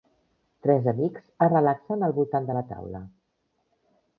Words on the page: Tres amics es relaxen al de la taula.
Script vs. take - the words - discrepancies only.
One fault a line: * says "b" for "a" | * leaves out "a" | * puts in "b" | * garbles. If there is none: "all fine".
* puts in "voltant"